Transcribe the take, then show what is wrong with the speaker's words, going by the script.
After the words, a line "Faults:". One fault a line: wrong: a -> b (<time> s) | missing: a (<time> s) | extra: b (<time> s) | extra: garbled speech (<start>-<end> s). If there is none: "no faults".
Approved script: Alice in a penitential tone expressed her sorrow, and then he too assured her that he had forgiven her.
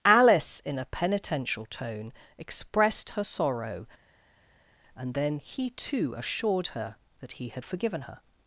Alice in a penitential tone expressed her sorrow, and then he too assured her that he had forgiven her.
Faults:
no faults